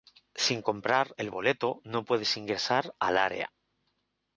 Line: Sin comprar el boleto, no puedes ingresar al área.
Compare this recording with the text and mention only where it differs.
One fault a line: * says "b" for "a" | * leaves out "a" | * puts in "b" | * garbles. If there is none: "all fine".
all fine